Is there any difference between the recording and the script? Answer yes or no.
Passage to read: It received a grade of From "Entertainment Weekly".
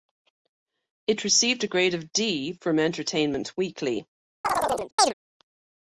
yes